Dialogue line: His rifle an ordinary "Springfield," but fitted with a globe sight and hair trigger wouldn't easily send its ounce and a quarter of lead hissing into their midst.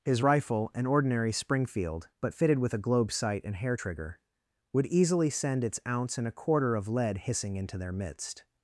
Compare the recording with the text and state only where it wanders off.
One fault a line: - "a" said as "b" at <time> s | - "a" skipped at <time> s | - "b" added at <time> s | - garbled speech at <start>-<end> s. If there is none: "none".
- "wouldn't" said as "would" at 4.7 s